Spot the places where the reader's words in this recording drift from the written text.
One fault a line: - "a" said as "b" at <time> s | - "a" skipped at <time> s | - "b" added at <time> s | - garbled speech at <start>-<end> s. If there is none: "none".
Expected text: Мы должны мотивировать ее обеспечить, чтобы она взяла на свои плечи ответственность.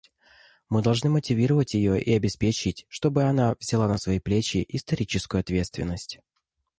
- "и" added at 2.0 s
- "историческую" added at 4.7 s